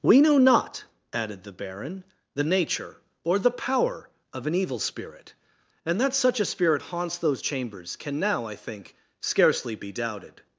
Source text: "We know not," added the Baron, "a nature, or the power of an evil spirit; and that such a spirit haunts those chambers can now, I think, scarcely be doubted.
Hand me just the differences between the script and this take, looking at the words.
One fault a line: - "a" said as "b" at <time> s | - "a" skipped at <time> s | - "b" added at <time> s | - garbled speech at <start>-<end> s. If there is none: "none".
- "a" said as "the" at 2.3 s